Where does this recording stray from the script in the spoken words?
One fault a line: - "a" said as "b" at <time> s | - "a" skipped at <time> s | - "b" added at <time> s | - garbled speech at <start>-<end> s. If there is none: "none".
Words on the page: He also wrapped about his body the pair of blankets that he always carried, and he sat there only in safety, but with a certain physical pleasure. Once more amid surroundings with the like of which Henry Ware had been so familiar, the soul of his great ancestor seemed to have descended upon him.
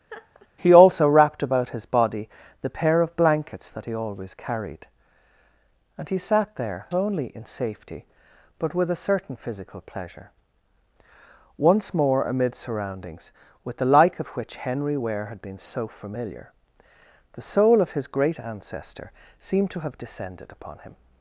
none